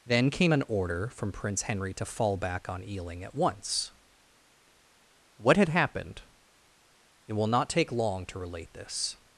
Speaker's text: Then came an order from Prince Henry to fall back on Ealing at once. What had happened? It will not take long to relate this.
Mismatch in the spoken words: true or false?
false